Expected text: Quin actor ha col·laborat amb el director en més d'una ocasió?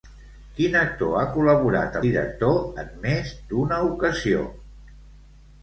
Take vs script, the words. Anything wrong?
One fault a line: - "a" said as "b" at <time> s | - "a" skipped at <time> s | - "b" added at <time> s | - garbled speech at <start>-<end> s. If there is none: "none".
- "amb el" skipped at 2.0 s